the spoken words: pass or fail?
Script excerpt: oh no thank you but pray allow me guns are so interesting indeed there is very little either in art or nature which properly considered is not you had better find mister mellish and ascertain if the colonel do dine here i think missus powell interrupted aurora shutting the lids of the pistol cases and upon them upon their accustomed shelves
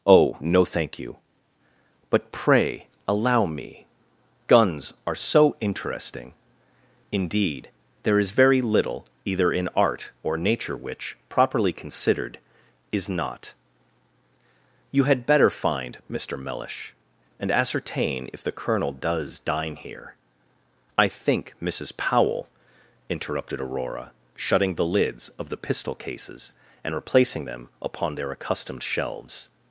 fail